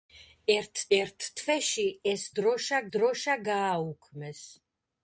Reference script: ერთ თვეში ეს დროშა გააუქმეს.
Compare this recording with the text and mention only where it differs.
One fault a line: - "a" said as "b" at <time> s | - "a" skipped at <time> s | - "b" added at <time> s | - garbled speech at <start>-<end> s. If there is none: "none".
- "ერთ" added at 1.0 s
- "დროშა" added at 3.0 s